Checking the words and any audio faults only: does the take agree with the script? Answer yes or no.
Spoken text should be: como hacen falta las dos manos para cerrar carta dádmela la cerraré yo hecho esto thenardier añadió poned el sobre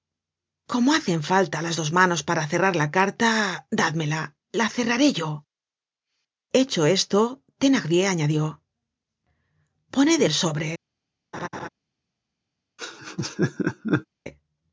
no